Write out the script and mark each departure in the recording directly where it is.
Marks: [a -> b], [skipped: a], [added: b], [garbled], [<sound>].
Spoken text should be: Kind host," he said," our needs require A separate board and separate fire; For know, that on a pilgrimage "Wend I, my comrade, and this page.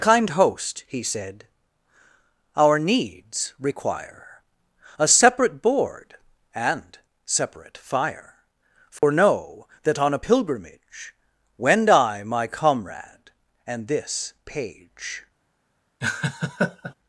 Kind host," he said," our needs require A separate board and separate fire; For [dropout] know, that on a pilgrimage "Wend I, my comrade, and this page. [laugh]